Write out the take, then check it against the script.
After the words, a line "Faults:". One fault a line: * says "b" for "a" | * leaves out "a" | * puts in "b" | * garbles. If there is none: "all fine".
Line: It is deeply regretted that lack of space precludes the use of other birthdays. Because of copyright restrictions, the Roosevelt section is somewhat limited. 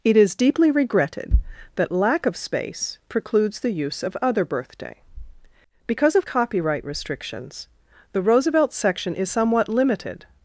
It is deeply regretted that lack of space precludes the use of other birthday. Because of copyright restrictions, the Roosevelt section is somewhat limited.
Faults:
* says "birthday" for "birthdays"